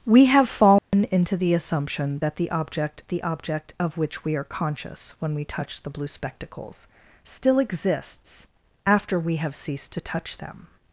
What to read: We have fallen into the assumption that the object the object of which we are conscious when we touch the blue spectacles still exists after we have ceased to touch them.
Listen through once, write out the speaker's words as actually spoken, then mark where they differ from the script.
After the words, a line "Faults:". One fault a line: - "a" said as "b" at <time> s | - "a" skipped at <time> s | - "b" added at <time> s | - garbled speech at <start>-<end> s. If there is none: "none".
We have fallen into the assumption that the object the object of which we are conscious when we touch the blue spectacles still exists after we have ceased to touch them.
Faults:
none